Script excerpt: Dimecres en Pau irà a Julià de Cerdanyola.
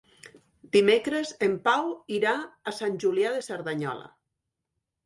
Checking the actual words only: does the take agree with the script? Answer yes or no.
no